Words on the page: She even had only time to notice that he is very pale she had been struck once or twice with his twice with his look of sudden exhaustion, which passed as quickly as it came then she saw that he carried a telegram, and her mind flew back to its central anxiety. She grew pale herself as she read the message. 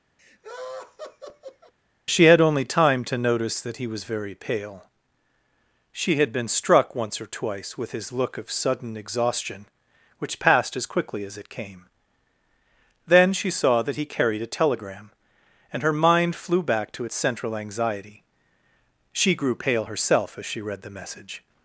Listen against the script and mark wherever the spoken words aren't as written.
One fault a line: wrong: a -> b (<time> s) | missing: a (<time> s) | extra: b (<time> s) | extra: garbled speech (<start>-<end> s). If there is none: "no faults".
missing: even (2.2 s)
wrong: is -> was (3.8 s)
missing: twice with his (8.1 s)